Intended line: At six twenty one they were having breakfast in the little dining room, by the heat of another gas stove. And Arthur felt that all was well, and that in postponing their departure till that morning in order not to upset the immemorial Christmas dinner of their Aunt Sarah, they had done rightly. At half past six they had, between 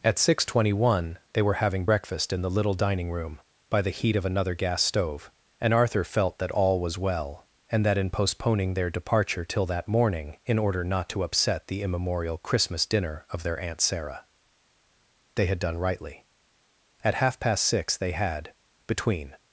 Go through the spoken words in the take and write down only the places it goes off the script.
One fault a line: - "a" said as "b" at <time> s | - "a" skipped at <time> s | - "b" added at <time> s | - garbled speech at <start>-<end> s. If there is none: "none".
none